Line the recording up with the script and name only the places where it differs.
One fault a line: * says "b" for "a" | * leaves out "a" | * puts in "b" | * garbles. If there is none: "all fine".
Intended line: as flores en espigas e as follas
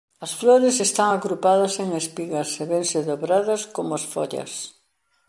* puts in "están agrupadas"
* puts in "vense dobradas como"